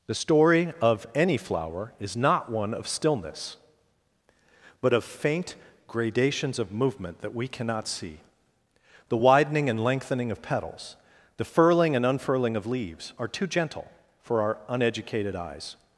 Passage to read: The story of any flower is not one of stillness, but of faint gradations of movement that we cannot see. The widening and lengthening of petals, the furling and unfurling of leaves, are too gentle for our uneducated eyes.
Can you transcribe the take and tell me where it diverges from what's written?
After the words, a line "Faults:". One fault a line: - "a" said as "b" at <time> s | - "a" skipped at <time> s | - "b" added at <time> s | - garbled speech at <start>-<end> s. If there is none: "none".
The story of any flower is not one of stillness, but of faint gradations of movement that we cannot see. The widening and lengthening of petals, the furling and unfurling of leaves, are too gentle for our uneducated eyes.
Faults:
none